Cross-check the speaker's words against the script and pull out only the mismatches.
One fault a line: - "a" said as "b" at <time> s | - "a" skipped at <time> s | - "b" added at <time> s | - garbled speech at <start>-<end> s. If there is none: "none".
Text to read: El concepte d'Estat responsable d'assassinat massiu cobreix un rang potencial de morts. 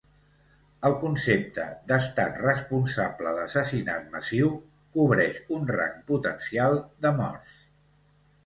none